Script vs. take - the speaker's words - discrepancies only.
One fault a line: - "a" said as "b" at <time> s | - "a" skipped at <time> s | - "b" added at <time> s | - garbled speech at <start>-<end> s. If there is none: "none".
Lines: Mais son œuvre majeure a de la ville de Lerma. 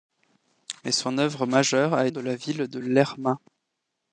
none